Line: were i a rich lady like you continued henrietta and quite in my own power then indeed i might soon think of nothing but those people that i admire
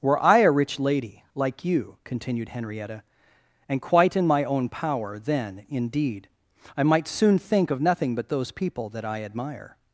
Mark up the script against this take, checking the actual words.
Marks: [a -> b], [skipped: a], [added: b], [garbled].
were i a rich lady like you continued henrietta and quite in my own power then indeed i might soon think of nothing but those people that i admire